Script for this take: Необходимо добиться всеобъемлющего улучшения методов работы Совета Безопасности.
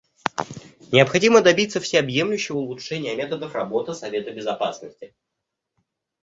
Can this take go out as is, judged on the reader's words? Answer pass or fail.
pass